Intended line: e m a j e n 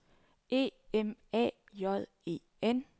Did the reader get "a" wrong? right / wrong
right